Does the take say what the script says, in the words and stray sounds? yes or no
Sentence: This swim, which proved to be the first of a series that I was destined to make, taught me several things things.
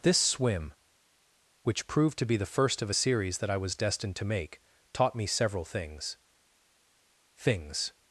yes